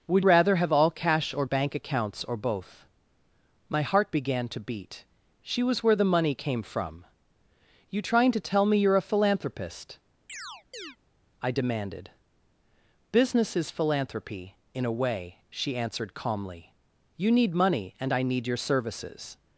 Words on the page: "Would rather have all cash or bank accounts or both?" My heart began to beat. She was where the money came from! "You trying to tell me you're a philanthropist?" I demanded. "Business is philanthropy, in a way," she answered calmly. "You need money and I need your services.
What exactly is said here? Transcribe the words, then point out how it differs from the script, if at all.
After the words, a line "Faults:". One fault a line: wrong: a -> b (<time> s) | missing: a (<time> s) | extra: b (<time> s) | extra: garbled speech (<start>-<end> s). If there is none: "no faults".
"Would rather have all cash or bank accounts or both?" My heart began to beat. She was where the money came from! "You trying to tell me you're a philanthropist?" I demanded. "Business is philanthropy, in a way," she answered calmly. "You need money and I need your services.
Faults:
no faults